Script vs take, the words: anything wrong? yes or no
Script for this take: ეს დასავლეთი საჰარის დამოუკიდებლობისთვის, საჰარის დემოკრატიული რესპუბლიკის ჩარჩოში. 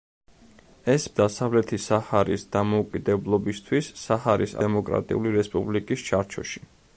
no